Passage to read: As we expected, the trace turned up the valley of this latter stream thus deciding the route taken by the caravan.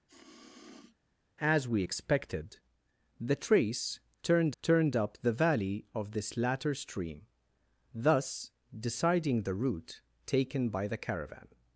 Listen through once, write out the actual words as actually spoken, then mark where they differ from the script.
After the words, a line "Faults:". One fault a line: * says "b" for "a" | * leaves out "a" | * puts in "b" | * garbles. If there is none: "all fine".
As we expected, the trace turned turned up the valley of this latter stream thus deciding the route taken by the caravan.
Faults:
* puts in "turned"